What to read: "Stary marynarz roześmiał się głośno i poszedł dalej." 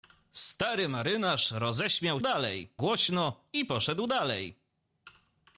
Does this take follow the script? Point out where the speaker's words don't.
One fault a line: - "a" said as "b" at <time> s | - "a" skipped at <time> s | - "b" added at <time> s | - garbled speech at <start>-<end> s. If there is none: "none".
- "się" said as "dalej" at 2.2 s